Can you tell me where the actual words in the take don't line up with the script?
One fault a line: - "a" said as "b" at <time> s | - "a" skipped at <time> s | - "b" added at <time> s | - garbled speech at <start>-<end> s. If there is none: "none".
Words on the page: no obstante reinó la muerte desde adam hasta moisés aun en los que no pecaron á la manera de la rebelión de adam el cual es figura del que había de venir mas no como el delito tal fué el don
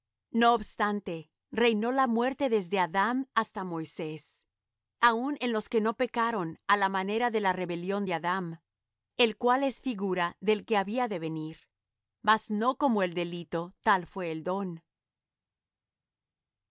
none